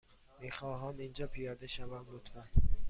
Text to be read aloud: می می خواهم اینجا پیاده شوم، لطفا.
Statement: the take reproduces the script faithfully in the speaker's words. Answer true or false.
false